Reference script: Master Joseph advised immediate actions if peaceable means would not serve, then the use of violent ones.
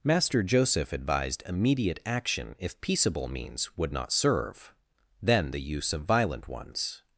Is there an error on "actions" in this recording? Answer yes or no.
yes